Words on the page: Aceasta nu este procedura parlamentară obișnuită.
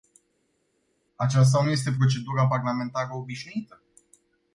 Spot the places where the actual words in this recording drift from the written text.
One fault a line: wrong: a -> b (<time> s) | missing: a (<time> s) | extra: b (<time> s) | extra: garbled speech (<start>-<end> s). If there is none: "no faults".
no faults